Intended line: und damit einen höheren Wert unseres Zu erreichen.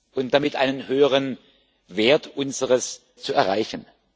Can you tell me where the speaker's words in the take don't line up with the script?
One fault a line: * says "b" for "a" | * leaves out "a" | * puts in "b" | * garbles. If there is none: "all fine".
all fine